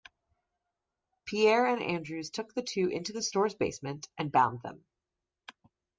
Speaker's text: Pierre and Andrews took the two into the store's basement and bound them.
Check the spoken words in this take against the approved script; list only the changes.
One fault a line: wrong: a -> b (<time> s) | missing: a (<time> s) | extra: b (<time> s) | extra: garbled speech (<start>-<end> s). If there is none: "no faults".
no faults